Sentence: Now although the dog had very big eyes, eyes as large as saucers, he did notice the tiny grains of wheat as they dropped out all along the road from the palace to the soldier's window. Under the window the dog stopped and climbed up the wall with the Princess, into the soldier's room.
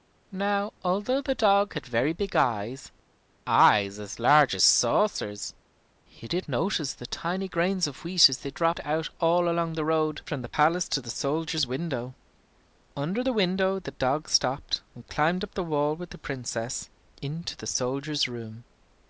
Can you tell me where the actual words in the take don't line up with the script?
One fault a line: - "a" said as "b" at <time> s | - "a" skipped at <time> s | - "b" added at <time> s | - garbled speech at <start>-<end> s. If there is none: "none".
none